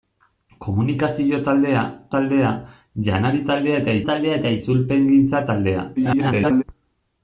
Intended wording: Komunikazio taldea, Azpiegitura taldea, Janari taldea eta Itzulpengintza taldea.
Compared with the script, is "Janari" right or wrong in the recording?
wrong